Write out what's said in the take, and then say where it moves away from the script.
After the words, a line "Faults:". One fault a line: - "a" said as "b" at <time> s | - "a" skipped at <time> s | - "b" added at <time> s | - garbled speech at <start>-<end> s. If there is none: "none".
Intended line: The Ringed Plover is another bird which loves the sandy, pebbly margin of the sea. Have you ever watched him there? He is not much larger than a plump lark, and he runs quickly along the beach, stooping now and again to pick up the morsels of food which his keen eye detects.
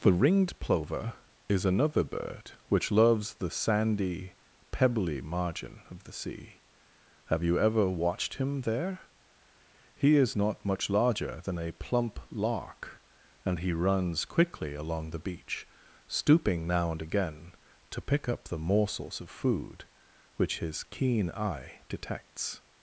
The Ringed Plover is another bird which loves the sandy, pebbly margin of the sea. Have you ever watched him there? He is not much larger than a plump lark, and he runs quickly along the beach, stooping now and again to pick up the morsels of food which his keen eye detects.
Faults:
none